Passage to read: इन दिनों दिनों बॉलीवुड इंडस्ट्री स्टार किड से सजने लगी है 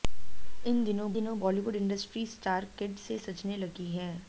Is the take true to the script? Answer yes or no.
yes